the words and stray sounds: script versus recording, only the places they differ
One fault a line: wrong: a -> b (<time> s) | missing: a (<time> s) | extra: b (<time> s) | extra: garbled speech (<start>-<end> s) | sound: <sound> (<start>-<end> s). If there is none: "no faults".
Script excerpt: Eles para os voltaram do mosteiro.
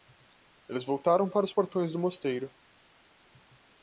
extra: voltaram (0.8 s)
wrong: voltaram -> portões (1.5 s)